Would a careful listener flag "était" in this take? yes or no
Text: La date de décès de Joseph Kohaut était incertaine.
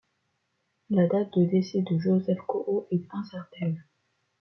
yes